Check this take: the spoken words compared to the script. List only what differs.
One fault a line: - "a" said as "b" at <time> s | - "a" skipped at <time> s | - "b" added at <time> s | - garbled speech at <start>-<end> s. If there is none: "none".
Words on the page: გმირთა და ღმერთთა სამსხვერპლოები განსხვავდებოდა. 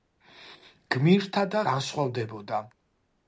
- "ღმერთთა სამსხვერპლოები" skipped at 1.6 s